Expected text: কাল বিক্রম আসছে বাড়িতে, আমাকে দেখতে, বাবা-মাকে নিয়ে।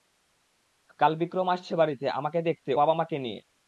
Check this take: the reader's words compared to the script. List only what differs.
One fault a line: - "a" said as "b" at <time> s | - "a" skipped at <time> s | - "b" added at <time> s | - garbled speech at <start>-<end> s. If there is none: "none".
none